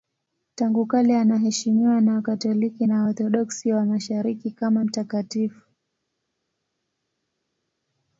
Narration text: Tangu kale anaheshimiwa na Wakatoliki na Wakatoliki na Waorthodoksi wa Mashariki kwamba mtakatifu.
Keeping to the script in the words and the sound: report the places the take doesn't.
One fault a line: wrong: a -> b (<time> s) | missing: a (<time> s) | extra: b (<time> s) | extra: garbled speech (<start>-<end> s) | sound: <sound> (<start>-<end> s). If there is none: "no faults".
missing: Wakatoliki na (3.0 s)
wrong: kwamba -> kama (4.5 s)